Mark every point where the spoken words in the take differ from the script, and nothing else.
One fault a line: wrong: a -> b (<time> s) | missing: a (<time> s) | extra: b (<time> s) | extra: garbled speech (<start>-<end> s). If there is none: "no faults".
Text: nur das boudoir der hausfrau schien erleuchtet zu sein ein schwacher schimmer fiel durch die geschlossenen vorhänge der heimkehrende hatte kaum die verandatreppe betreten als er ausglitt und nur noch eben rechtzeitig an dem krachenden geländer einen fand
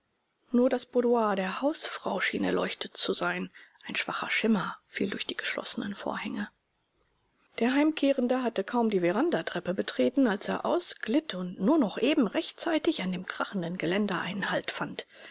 extra: halt (14.5 s)